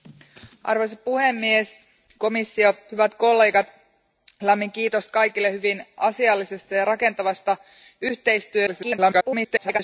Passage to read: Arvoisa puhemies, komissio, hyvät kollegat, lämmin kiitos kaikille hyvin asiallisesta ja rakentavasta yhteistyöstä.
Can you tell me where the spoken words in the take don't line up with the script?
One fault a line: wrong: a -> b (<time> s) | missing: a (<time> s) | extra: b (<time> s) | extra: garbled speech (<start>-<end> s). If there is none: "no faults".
extra: garbled speech (8.7-9.8 s)